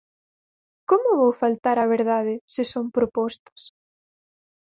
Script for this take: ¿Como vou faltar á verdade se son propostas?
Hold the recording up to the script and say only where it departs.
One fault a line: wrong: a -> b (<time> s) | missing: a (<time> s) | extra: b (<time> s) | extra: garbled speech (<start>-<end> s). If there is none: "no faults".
no faults